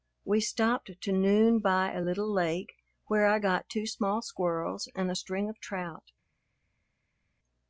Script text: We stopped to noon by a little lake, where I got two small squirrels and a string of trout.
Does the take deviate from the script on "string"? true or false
false